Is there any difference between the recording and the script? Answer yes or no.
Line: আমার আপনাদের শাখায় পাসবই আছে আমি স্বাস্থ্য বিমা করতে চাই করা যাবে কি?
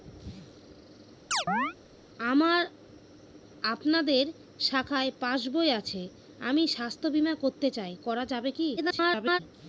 yes